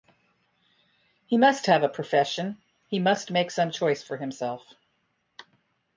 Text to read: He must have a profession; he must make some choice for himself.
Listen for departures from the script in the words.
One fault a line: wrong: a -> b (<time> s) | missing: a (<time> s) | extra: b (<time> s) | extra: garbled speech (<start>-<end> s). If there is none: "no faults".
no faults